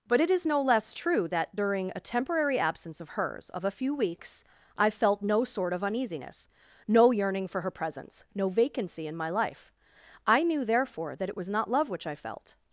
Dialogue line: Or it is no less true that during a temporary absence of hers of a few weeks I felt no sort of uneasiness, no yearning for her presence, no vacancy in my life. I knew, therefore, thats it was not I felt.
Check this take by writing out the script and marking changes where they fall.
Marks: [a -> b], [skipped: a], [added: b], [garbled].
[Or -> But] it is no less true that during a temporary absence of hers of a few weeks I felt no sort of uneasiness, no yearning for her presence, no vacancy in my life. I knew, therefore, [thats -> that] it was not [added: love which] I felt.